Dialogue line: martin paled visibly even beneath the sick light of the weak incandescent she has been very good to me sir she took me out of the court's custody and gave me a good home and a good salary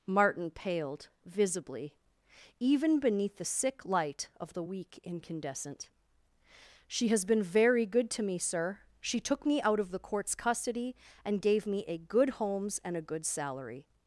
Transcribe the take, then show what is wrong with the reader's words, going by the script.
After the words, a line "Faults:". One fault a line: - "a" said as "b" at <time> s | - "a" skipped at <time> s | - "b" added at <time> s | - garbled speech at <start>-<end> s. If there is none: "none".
martin paled visibly even beneath the sick light of the weak incandescent she has been very good to me sir she took me out of the court's custody and gave me a good homes and a good salary
Faults:
- "home" said as "homes" at 12.3 s